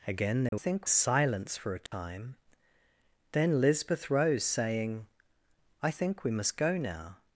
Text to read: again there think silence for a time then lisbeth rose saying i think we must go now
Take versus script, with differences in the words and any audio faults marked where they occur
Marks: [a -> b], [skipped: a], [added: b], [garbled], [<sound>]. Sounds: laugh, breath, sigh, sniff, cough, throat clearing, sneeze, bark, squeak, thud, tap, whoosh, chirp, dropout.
again there [dropout] think silence for a time [dropout] then lisbeth rose saying i think we must go now